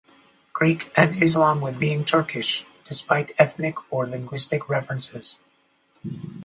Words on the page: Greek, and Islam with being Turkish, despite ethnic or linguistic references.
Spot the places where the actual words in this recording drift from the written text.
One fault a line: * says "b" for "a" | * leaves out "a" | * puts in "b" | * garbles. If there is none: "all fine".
all fine